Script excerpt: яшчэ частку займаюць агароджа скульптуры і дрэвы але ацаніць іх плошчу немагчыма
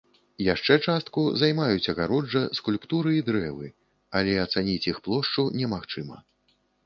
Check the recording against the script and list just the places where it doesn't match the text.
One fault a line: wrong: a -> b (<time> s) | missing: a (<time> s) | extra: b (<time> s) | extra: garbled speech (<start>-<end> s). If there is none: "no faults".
no faults